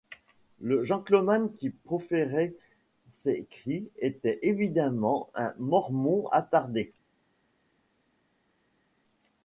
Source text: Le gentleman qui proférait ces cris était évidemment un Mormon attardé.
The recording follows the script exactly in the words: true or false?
true